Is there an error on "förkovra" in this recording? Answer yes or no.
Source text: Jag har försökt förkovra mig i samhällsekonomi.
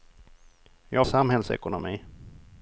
yes